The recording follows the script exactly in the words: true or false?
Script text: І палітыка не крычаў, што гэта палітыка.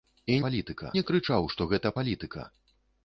true